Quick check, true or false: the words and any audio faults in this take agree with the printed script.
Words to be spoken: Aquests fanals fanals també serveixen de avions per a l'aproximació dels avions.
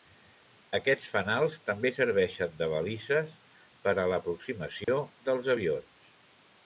false